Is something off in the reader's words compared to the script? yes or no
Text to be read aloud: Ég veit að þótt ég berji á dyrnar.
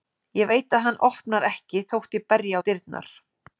yes